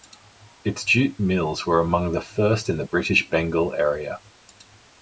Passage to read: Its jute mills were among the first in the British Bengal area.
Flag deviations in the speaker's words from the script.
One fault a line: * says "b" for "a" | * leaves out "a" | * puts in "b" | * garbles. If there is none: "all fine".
all fine